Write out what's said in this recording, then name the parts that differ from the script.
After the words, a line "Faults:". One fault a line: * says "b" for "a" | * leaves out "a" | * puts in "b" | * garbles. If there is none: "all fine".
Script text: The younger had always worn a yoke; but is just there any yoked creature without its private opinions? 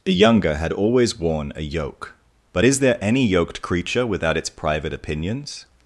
The younger had always worn a yoke; but is there any yoked creature without its private opinions?
Faults:
* leaves out "just"